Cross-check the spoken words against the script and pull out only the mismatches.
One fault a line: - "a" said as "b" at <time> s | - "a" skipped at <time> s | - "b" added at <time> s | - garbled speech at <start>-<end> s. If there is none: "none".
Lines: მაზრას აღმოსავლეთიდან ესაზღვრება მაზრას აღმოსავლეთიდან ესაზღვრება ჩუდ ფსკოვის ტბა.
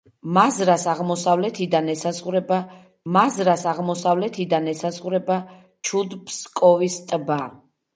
none